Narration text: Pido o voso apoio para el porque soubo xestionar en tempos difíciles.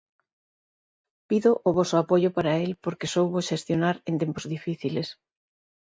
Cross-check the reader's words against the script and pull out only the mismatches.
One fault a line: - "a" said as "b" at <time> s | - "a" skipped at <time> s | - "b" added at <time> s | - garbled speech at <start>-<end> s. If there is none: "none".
none